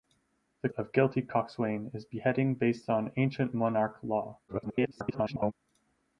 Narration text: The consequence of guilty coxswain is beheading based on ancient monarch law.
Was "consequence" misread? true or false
true